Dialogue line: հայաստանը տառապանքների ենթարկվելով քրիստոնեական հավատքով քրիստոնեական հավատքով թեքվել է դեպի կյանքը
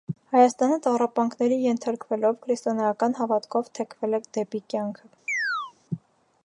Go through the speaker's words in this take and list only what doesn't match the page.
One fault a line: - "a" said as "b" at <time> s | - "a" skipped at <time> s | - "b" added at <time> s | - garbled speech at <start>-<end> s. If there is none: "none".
- "քրիստոնեական հավատքով" skipped at 3.7 s